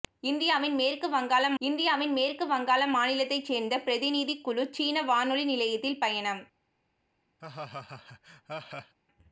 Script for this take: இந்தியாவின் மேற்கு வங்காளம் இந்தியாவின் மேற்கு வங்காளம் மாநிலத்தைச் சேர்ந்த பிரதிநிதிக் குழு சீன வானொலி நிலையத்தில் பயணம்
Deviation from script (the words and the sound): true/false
true